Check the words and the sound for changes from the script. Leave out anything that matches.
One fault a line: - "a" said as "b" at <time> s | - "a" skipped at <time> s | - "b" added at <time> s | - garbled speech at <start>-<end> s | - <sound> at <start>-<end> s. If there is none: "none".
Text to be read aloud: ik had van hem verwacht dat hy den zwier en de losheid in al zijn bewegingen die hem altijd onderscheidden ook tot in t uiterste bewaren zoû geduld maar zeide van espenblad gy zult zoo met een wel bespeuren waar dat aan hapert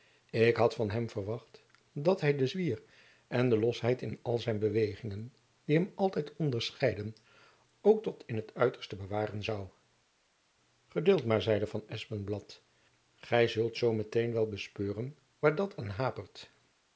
none